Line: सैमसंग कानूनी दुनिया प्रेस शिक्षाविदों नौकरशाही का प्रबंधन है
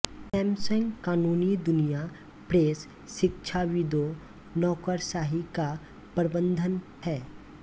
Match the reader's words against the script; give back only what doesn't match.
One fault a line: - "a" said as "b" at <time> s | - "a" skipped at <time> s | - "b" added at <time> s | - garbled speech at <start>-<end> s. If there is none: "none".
none